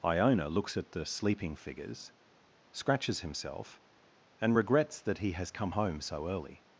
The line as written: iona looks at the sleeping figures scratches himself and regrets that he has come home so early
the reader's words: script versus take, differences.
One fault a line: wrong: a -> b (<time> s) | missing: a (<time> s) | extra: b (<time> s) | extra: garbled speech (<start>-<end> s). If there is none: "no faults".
no faults